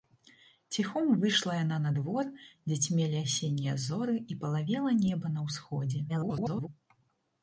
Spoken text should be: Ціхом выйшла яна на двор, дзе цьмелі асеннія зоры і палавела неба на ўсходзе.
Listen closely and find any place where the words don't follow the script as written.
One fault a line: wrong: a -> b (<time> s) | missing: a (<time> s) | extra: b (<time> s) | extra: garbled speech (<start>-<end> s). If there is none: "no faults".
extra: garbled speech (6.1-6.7 s)